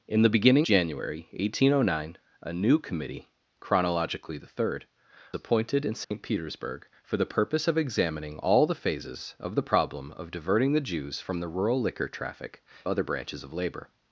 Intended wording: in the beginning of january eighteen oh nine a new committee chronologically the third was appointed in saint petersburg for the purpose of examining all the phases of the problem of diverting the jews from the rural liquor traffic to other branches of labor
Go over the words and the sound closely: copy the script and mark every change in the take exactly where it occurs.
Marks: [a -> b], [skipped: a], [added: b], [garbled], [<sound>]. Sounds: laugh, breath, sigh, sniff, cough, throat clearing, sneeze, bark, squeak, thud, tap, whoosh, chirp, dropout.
in the beginning [skipped: of] january eighteen oh nine a new committee chronologically the third [skipped: was] appointed in saint [dropout] petersburg for the purpose of examining all the phases of the problem of diverting the jews from the rural liquor traffic [skipped: to] other branches of labor